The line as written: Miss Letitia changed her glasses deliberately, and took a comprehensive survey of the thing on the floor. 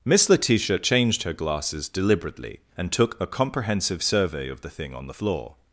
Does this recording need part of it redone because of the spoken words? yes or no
no